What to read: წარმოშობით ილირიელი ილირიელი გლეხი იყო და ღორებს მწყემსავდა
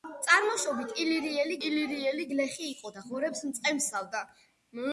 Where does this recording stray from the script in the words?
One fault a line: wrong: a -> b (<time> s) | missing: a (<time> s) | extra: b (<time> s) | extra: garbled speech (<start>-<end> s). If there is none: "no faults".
no faults